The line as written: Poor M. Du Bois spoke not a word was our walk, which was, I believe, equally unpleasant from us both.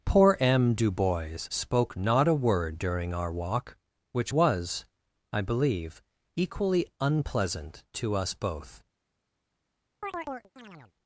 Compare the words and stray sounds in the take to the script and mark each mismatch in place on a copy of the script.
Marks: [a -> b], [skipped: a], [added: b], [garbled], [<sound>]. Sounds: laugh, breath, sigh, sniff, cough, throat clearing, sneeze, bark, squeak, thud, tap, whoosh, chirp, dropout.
Poor M. Du Bois spoke not a word [was -> during] our walk, which was, I believe, equally unpleasant [from -> to] us both. [chirp]